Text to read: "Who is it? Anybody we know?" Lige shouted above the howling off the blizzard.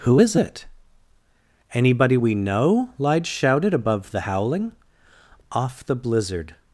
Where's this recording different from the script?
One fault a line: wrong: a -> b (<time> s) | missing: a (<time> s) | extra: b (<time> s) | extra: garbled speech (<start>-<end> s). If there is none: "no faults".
no faults